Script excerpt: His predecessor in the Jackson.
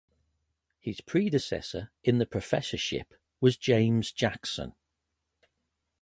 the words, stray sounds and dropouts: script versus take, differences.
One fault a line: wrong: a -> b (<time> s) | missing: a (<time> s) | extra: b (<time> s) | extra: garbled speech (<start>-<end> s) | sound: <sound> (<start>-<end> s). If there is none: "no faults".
extra: professorship was James (2.3 s)